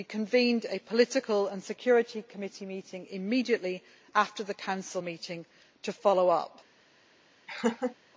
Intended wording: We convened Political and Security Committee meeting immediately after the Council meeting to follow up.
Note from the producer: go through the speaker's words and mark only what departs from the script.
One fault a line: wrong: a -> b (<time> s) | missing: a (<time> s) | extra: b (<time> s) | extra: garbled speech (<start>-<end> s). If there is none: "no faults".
extra: a (0.7 s)